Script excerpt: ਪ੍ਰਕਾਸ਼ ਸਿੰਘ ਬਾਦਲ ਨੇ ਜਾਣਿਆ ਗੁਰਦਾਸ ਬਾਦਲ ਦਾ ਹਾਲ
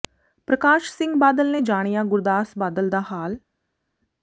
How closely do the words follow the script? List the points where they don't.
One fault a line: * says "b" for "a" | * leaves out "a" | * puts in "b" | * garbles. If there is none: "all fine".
all fine